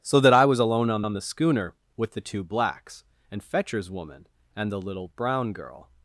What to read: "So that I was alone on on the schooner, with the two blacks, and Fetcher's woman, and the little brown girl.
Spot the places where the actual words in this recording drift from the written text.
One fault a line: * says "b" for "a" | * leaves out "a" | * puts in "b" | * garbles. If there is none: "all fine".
all fine